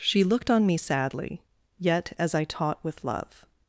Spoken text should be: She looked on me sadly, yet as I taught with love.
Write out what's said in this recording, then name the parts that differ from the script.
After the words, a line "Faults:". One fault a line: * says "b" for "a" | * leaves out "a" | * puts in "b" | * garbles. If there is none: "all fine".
She looked on me sadly, yet as I taught with love.
Faults:
all fine